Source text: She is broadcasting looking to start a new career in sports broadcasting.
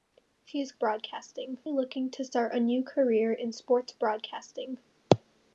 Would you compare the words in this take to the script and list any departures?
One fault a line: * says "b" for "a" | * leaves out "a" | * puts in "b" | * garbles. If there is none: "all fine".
all fine